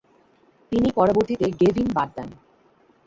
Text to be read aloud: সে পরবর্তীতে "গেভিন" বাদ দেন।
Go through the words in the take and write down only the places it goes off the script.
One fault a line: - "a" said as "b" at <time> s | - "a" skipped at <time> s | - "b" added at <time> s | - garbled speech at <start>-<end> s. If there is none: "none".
- "সে" said as "তিনি" at 0.7 s